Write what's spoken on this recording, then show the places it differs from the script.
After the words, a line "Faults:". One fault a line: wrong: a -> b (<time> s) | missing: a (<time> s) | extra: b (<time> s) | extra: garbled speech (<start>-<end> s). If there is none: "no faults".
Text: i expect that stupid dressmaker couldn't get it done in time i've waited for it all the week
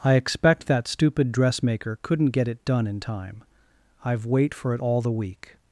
i expect that stupid dressmaker couldn't get it done in time i've wait for it all the week
Faults:
wrong: waited -> wait (4.3 s)